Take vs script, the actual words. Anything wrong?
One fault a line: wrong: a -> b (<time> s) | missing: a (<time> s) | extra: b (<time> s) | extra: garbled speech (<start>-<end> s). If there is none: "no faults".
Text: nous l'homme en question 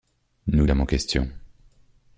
no faults